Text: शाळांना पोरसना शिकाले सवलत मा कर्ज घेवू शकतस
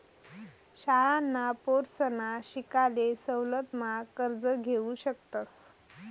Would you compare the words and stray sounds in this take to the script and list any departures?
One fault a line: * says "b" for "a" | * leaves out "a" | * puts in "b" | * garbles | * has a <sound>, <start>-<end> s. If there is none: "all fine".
all fine